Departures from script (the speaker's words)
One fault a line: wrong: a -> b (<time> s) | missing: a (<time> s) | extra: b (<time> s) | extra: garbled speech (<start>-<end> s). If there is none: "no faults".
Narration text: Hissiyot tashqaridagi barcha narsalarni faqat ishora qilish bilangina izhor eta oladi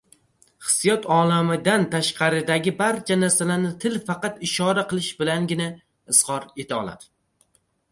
extra: olamidan (1.2 s)
extra: til (3.8 s)